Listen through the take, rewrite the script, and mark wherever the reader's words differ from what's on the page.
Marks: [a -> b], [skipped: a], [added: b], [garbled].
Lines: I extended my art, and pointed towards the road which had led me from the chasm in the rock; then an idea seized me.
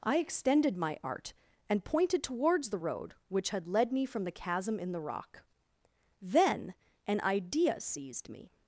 I extended my art, and pointed towards the road which had led me from the chasm in the rock; then an idea seized me.